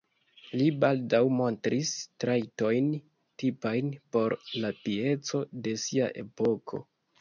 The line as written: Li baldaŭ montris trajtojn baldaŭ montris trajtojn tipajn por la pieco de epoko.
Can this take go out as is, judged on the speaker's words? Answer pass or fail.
fail